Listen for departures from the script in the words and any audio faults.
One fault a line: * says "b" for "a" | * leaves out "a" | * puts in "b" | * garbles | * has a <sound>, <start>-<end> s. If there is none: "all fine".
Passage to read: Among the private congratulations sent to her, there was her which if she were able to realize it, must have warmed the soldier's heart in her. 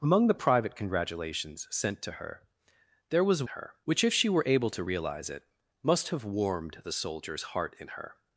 all fine